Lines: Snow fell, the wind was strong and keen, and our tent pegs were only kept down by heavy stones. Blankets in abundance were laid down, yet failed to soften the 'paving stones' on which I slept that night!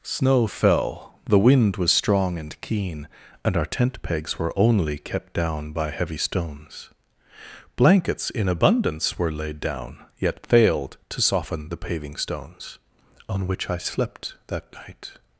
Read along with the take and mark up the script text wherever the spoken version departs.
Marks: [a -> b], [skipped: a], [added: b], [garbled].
Snow fell, the wind was strong and keen, and our tent pegs were only kept down by heavy stones. Blankets in abundance were laid down, yet failed to soften the 'paving stones' on which I slept that night!